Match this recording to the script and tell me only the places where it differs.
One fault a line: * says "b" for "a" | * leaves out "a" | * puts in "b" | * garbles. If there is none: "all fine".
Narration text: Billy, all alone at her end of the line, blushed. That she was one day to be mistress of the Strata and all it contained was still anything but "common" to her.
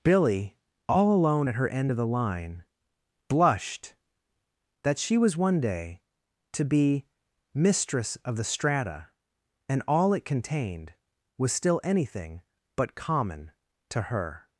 all fine